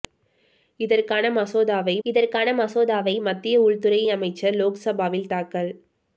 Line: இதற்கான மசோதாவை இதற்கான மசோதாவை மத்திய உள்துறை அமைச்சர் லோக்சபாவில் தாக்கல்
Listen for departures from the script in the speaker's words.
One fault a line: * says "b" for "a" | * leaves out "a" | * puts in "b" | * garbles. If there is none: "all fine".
all fine